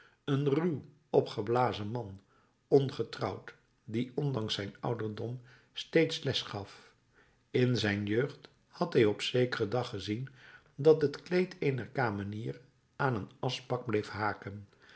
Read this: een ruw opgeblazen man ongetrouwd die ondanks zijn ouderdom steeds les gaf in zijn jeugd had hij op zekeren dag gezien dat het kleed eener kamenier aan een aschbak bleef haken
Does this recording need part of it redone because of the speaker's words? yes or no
no